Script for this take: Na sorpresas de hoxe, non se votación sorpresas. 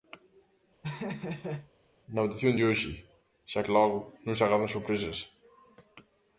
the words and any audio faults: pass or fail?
fail